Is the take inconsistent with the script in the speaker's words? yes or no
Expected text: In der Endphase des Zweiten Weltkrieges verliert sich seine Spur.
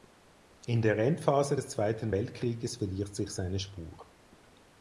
no